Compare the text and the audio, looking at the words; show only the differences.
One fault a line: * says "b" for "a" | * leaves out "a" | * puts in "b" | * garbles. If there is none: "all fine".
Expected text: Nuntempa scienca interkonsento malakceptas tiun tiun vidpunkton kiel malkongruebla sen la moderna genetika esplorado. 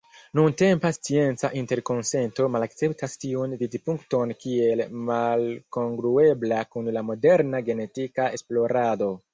* leaves out "tiun"
* says "kun" for "sen"